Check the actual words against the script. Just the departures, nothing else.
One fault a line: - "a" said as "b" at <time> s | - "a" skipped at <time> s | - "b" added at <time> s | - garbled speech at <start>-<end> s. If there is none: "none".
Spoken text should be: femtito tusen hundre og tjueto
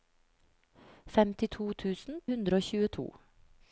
none